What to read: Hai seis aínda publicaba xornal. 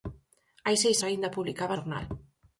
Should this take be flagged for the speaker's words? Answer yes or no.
no